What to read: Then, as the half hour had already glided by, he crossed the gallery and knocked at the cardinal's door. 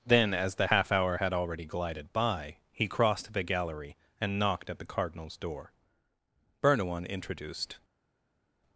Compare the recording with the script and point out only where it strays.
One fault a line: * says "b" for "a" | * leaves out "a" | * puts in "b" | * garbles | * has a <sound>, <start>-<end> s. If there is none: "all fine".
* puts in "Bernouin introduced"